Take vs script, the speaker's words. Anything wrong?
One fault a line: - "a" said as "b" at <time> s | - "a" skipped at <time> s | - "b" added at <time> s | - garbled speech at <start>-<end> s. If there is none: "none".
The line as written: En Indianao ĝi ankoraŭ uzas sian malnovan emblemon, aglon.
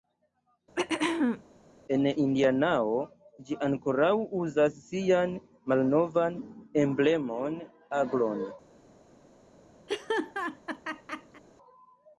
none